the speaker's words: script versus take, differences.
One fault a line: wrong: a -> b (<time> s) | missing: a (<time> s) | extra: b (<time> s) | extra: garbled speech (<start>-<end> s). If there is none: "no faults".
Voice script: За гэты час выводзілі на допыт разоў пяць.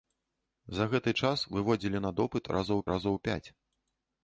extra: разоў (2.9 s)